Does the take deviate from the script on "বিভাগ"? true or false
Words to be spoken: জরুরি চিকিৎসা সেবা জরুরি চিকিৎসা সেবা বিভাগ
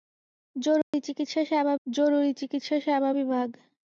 false